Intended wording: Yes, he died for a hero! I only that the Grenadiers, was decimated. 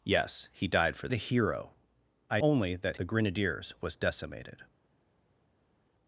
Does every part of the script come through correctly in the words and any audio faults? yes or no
yes